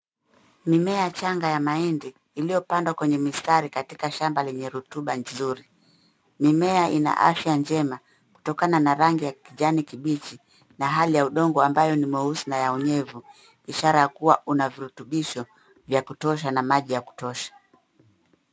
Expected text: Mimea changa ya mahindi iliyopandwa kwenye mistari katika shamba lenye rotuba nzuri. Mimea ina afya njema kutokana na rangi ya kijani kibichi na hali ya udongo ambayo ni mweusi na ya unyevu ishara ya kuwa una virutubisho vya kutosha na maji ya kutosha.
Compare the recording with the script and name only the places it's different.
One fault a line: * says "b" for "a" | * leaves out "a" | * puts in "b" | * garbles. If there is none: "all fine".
all fine